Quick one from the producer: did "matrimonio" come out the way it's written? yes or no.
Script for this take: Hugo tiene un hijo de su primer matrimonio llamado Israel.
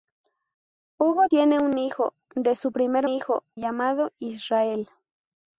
no